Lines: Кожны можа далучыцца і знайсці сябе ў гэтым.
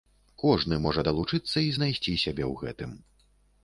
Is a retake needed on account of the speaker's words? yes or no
no